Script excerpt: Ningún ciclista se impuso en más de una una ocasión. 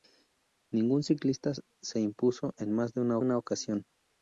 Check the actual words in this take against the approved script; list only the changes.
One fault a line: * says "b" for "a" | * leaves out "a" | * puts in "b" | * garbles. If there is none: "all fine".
all fine